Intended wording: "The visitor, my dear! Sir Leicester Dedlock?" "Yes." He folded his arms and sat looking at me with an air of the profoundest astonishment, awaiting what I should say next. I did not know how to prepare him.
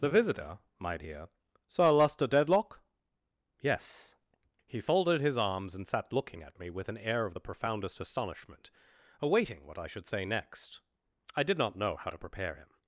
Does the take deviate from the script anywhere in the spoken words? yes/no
no